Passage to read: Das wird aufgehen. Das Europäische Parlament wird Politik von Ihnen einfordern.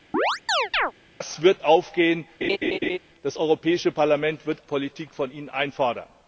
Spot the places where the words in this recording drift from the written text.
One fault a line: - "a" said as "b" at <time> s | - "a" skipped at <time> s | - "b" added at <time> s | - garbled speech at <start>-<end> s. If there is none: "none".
none